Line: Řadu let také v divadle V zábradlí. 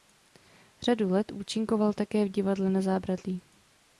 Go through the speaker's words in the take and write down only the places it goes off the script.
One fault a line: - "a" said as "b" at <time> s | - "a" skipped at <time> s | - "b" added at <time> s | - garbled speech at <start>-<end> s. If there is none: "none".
- "účinkoval" added at 1.3 s
- "V" said as "Na" at 2.7 s